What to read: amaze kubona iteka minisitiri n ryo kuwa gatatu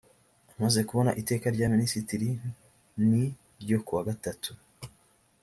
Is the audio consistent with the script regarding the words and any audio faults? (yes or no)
no